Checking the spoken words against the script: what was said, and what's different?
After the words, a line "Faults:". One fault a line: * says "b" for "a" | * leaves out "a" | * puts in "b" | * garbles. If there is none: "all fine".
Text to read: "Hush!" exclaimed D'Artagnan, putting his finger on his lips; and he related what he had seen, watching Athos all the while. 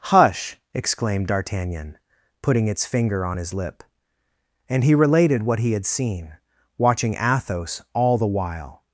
"Hush!" exclaimed D'Artagnan, putting its finger on his lip; and he related what he had seen, watching Athos all the while.
Faults:
* says "its" for "his"
* says "lip" for "lips"